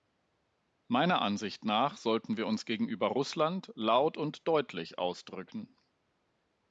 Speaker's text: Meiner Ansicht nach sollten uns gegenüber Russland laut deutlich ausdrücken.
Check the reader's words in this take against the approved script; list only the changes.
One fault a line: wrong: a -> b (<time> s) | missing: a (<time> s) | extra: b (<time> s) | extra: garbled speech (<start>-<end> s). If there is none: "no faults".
extra: wir (2.4 s)
extra: und (4.2 s)